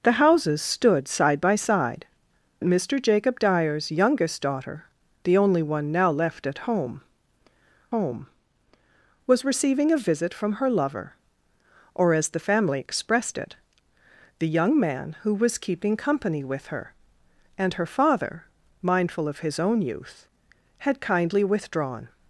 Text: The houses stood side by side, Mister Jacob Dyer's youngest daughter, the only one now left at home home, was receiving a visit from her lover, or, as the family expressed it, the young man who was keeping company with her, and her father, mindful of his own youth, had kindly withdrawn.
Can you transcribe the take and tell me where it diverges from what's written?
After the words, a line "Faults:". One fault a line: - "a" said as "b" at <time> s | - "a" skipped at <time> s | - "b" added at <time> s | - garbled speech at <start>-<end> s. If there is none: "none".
The houses stood side by side, Mister Jacob Dyer's youngest daughter, the only one now left at home home, was receiving a visit from her lover, or, as the family expressed it, the young man who was keeping company with her, and her father, mindful of his own youth, had kindly withdrawn.
Faults:
none